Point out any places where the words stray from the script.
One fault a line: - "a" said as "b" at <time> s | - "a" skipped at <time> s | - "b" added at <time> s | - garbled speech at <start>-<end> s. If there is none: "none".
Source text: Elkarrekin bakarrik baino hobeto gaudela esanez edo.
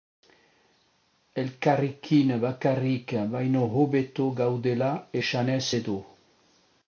none